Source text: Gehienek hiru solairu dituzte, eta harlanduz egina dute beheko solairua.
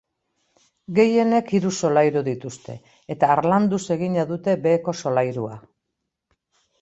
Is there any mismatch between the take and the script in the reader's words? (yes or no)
no